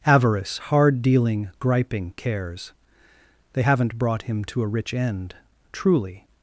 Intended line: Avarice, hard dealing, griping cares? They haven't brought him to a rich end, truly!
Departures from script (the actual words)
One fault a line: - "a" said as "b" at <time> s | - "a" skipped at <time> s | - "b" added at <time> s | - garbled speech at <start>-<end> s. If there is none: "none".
none